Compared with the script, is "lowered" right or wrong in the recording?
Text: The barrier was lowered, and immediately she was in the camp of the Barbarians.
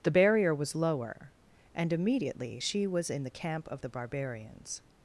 wrong